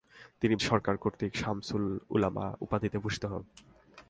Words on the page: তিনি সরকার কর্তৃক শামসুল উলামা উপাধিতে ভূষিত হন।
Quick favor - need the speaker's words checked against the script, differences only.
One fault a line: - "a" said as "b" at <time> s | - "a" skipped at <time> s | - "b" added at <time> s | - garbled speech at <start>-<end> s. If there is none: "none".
none